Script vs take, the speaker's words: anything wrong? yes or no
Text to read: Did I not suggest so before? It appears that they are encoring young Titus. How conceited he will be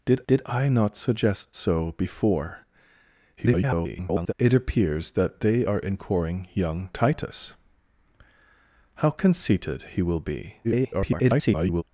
yes